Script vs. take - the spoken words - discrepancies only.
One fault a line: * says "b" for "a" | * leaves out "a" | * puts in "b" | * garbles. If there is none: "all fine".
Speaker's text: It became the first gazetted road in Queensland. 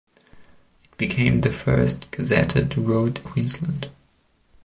* leaves out "in"